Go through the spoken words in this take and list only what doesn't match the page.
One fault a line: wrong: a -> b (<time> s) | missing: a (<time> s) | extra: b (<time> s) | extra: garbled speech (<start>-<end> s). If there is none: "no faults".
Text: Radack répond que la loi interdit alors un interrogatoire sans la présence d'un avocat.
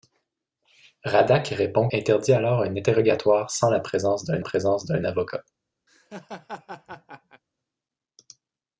missing: que la loi (1.9 s)
extra: présence d'un (4.4 s)